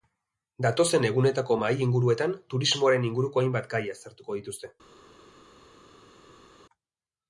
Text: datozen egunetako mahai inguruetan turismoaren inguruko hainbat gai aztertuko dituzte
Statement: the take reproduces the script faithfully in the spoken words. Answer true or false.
true